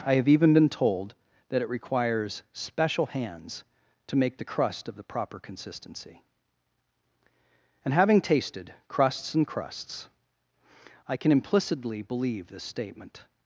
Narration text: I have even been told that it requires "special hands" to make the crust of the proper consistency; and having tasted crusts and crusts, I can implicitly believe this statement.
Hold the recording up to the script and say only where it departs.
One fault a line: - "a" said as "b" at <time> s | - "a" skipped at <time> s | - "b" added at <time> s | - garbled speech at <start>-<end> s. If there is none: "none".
none